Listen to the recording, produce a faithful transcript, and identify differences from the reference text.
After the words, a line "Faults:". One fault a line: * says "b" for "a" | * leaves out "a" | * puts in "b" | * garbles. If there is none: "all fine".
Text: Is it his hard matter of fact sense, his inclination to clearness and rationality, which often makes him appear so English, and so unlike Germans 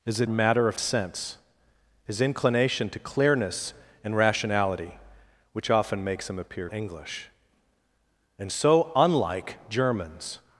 Is it matter of sense, his inclination to clearness and rationality, which often makes him appear English, and so unlike Germans
Faults:
* leaves out "his hard"
* leaves out "fact"
* leaves out "so"